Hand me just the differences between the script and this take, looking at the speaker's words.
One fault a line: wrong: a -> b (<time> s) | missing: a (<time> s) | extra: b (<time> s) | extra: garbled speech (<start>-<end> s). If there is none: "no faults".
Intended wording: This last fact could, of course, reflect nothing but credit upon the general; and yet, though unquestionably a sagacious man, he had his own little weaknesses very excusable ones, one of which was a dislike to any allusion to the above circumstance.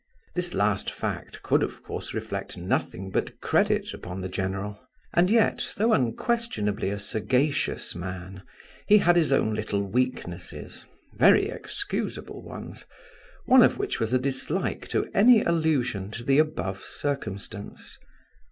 no faults